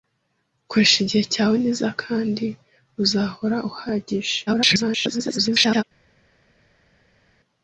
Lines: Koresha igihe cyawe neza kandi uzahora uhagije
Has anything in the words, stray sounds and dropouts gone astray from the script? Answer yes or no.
yes